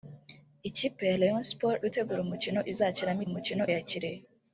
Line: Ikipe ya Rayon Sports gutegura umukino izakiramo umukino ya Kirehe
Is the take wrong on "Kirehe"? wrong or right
right